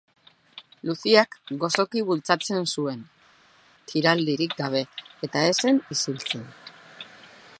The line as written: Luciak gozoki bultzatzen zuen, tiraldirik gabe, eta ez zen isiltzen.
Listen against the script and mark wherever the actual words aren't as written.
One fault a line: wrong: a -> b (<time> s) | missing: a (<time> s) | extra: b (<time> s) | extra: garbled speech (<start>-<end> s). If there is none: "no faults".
no faults